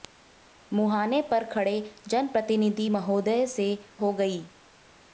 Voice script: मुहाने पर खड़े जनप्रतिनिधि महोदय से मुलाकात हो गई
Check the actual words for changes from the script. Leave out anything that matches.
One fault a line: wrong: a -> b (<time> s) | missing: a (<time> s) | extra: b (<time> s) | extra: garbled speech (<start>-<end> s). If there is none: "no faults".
missing: मुलाकात (3.7 s)